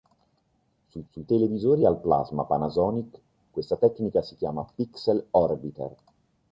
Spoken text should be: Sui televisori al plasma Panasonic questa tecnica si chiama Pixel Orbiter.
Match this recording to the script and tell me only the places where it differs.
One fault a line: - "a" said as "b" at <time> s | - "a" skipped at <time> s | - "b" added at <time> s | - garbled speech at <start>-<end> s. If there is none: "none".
- "sui" added at 1.1 s